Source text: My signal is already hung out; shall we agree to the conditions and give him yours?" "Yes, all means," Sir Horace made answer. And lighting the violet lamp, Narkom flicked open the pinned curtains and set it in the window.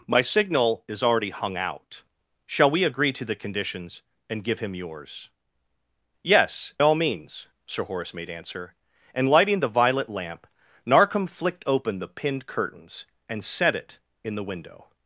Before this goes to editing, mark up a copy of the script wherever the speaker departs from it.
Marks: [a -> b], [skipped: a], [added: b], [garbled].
My signal is already hung out; shall we agree to the conditions and give him yours?" "Yes, all means," Sir Horace made answer. And lighting the violet lamp, Narkom flicked open the pinned curtains and set it in the window.